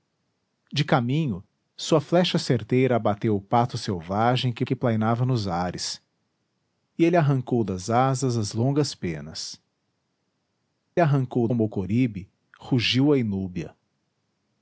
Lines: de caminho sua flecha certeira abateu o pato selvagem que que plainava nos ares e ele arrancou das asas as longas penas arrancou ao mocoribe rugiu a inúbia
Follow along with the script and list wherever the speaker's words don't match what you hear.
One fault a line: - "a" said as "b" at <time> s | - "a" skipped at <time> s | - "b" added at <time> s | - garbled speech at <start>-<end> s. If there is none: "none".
none